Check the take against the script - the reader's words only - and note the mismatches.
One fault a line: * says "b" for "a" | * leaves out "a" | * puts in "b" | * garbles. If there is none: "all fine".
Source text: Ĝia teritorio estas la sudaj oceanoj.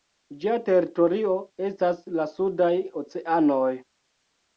all fine